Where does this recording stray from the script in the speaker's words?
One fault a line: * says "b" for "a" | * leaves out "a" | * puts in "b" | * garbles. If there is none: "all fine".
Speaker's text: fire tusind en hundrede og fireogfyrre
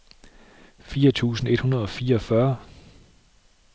* says "et" for "en"